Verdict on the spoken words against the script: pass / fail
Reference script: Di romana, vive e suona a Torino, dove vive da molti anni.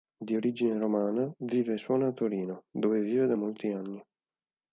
fail